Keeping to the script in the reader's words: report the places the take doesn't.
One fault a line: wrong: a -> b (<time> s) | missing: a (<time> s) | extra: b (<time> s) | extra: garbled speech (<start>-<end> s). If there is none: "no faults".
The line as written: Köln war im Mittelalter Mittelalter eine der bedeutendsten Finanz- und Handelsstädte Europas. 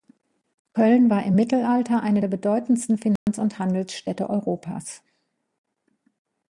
missing: Mittelalter (2.0 s)